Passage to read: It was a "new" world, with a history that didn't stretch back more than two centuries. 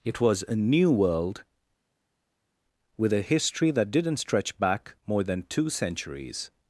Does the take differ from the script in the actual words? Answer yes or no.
no